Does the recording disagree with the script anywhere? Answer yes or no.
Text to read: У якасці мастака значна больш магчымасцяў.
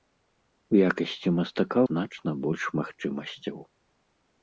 no